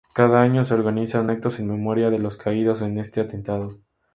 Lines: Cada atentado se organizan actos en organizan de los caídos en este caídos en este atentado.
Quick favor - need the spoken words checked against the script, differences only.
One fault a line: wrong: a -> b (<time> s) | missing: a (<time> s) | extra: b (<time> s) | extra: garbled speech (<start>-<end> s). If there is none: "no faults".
wrong: atentado -> año (0.4 s)
wrong: organizan -> memoria (1.7 s)
missing: caídos en este (3.2 s)